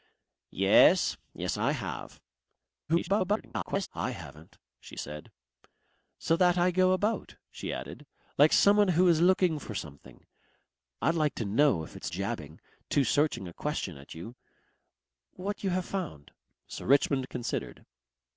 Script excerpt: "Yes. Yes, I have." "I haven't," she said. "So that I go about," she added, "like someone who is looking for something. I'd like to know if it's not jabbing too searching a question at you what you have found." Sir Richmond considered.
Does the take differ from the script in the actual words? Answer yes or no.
yes